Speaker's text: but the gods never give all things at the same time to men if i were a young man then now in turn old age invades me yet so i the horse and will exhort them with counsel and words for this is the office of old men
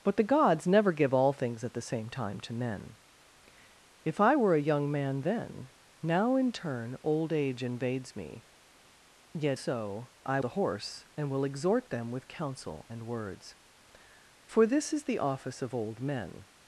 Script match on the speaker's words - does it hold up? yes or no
yes